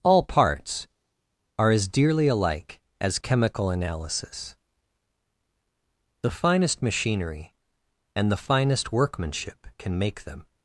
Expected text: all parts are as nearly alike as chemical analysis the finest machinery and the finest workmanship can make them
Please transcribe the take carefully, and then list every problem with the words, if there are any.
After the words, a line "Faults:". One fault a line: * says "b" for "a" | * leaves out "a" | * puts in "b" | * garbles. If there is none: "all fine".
all parts are as dearly alike as chemical analysis the finest machinery and the finest workmanship can make them
Faults:
* says "dearly" for "nearly"